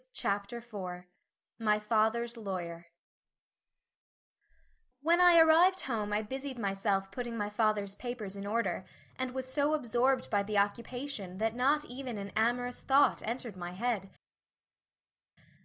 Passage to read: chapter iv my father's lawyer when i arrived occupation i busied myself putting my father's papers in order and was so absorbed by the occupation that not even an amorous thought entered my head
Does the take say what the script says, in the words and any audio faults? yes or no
no